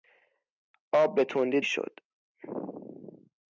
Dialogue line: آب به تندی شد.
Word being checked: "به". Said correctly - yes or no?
yes